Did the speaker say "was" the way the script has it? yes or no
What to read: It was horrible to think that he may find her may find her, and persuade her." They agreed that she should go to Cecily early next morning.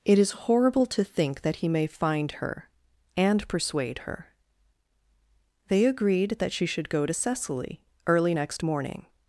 no